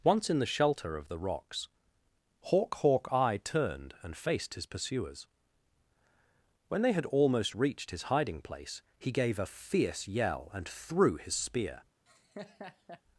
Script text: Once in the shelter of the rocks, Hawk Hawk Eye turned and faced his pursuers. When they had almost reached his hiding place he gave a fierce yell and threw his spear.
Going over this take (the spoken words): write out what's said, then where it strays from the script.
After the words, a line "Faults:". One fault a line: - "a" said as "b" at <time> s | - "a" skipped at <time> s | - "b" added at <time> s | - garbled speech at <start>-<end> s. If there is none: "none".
Once in the shelter of the rocks, Hawk Hawk Eye turned and faced his pursuers. When they had almost reached his hiding place he gave a fierce yell and threw his spear.
Faults:
none